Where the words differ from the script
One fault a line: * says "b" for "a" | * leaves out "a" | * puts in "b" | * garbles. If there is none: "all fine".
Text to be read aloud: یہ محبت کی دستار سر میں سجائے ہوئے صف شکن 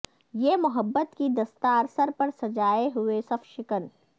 * says "پر" for "میں"